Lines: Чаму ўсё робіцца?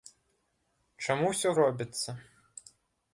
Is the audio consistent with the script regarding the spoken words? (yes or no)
yes